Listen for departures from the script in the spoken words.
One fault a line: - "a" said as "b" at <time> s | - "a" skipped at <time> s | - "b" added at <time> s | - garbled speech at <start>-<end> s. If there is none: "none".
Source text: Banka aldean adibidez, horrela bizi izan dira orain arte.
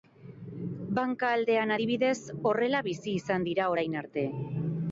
none